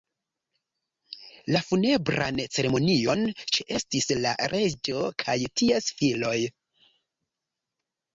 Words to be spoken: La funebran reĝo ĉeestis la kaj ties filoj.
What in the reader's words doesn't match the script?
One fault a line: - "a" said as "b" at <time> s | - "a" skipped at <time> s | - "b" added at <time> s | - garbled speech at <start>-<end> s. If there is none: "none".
- "reĝo" said as "ceremonion" at 2.6 s
- "reĝo" added at 4.5 s